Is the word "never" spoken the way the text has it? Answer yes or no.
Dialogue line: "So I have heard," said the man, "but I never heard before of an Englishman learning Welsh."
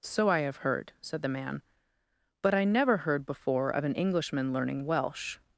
yes